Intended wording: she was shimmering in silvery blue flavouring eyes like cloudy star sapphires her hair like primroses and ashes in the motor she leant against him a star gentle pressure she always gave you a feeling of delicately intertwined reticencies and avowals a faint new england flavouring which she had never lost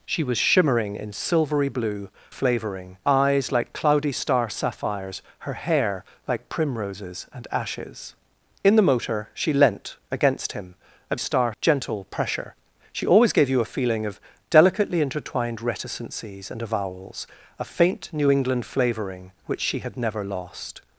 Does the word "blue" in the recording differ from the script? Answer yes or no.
no